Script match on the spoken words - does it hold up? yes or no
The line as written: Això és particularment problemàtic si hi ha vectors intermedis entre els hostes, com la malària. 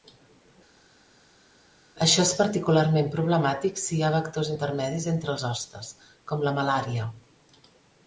yes